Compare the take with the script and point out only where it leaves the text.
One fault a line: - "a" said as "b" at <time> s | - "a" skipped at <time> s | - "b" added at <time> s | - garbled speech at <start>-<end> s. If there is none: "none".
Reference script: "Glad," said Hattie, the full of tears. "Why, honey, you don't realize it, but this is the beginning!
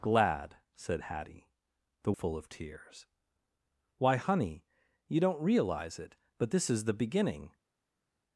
none